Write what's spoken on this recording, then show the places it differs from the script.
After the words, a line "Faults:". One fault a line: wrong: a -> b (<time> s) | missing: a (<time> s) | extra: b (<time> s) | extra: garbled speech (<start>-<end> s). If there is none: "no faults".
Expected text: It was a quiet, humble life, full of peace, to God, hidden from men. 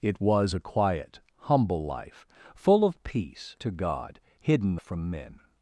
It was a quiet, humble life, full of peace, to God, hidden from men.
Faults:
no faults